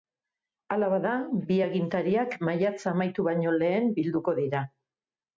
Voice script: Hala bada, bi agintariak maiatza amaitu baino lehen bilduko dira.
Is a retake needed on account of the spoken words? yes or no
no